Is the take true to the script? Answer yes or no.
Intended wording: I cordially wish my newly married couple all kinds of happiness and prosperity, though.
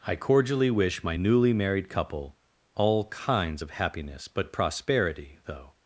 no